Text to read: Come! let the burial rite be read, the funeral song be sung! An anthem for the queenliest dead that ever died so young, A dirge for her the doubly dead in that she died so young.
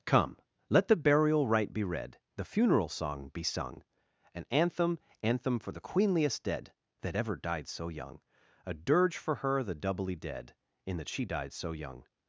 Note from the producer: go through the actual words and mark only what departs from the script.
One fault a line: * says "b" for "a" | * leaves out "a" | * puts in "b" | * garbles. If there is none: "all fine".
* puts in "anthem"